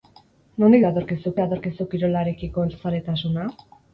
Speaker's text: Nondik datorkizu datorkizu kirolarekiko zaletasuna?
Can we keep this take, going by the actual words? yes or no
yes